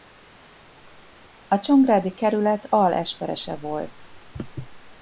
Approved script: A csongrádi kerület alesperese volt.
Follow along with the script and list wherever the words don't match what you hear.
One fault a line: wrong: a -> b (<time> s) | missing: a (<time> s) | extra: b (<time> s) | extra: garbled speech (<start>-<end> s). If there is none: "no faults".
no faults